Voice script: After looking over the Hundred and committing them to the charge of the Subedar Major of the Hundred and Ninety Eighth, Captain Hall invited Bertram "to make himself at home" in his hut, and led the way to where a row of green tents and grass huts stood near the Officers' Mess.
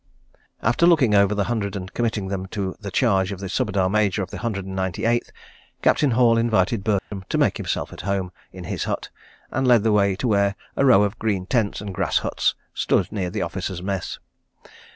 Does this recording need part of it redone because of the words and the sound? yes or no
yes